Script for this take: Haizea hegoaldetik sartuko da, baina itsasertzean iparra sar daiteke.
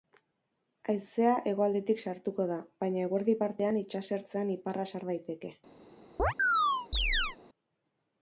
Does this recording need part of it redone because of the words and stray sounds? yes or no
yes